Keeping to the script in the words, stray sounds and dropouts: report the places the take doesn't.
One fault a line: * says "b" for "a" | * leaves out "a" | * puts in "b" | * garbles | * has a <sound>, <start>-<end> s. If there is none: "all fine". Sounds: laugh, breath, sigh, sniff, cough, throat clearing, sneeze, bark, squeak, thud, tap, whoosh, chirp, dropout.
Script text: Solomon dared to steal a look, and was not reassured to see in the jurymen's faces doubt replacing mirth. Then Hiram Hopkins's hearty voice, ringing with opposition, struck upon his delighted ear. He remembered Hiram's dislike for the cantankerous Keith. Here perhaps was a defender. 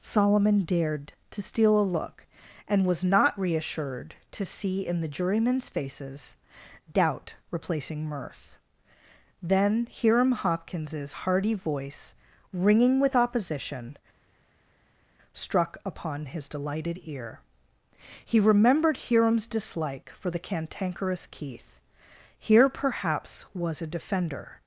all fine